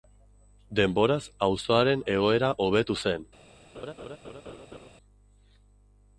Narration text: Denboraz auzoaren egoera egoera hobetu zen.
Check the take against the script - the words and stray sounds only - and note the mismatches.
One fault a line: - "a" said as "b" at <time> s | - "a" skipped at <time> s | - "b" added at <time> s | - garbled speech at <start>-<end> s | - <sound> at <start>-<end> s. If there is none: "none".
- "egoera" skipped at 2.5 s
- laugh at 3.7-4.9 s